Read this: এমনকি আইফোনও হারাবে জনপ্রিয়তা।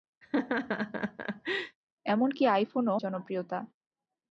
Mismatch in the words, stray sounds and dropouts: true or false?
true